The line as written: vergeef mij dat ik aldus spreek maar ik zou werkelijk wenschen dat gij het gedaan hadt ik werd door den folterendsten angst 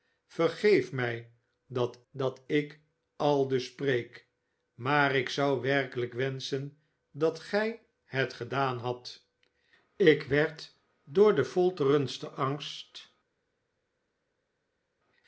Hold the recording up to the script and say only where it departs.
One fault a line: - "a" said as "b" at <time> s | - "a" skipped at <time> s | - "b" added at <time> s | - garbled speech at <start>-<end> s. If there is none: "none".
- "dat" added at 2.1 s